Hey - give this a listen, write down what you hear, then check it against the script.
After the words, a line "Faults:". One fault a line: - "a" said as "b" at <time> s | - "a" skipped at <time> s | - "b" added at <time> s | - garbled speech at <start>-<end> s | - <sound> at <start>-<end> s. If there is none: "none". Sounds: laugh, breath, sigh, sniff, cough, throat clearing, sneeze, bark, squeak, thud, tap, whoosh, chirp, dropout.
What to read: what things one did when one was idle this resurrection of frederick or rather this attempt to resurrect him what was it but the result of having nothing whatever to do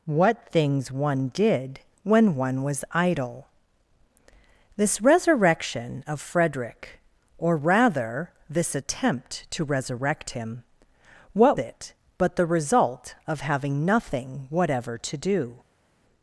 what things one did when one was idle this resurrection of frederick or rather this attempt to resurrect him what it but the result of having nothing whatever to do
Faults:
- "was" skipped at 11.6 s